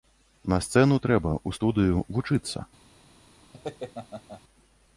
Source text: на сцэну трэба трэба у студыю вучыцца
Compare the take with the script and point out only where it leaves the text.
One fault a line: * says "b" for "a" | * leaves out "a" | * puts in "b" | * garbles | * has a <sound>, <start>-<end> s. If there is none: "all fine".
* leaves out "трэба"
* has a laugh, 3.5-4.4 s